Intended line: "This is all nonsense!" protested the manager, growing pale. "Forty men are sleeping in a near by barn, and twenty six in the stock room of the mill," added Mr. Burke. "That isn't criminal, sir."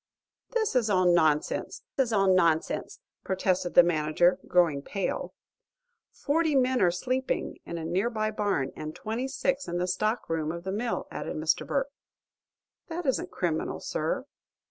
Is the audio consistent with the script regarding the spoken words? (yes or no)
no